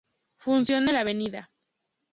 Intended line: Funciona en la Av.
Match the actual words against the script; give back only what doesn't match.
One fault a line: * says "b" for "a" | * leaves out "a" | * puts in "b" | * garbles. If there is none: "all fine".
all fine